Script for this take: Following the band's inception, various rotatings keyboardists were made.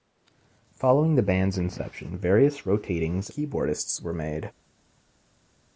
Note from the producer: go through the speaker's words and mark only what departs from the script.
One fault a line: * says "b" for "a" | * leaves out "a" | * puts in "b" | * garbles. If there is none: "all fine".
all fine